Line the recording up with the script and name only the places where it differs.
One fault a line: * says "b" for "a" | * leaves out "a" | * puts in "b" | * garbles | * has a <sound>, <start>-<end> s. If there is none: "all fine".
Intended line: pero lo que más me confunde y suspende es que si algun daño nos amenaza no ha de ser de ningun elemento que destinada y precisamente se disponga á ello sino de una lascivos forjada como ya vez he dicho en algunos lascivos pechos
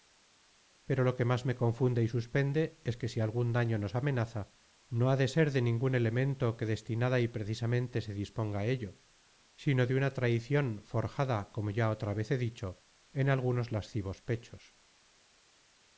* says "traicion" for "lascivos"
* puts in "otra"